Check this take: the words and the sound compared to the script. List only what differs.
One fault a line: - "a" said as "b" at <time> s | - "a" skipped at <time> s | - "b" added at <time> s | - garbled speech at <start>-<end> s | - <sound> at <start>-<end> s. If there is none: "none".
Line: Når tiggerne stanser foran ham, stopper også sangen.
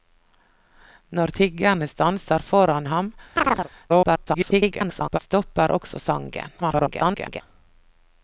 - chirp at 3.4-3.7 s
- garbled speech at 3.9-5.2 s
- garbled speech at 6.6-7.4 s